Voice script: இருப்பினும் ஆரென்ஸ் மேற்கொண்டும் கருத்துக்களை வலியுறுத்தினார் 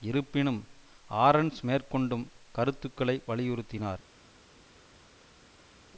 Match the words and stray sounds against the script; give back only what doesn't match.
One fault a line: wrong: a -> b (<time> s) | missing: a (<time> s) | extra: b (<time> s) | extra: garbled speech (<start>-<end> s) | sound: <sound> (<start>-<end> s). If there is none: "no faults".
no faults